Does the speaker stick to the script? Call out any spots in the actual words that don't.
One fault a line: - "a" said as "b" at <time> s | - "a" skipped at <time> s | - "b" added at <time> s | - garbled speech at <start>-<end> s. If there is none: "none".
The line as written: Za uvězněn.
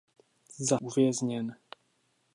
none